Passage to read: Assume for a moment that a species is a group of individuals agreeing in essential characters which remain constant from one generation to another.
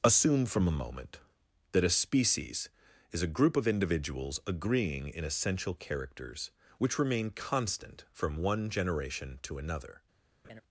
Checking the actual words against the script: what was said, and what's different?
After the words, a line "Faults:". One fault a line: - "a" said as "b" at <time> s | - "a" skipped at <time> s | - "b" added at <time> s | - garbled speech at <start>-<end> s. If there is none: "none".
Assume from a moment that a species is a group of individuals agreeing in essential characters which remain constant from one generation to another.
Faults:
- "for" said as "from" at 0.5 s